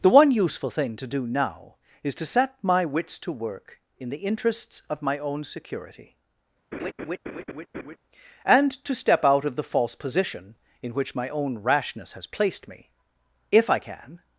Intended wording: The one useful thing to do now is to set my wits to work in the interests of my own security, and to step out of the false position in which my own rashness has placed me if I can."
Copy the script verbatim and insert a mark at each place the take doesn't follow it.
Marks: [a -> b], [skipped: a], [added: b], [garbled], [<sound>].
The one useful thing to do now is to set my wits to work in the interests of my own security, [laugh] and to step out of the false position in which my own rashness has placed me if I can."